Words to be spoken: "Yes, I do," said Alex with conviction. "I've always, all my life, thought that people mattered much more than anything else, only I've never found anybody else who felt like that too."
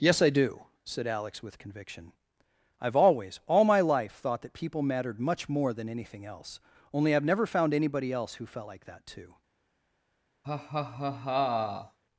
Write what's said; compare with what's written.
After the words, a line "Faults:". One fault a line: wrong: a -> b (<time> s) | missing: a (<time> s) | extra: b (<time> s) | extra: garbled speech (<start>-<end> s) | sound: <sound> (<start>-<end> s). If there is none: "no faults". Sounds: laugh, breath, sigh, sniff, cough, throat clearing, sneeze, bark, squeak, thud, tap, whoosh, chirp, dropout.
"Yes, I do," said Alex with conviction. "I've always, all my life, thought that people mattered much more than anything else, only I've never found anybody else who felt like that too."
Faults:
sound: laugh (10.4-12.0 s)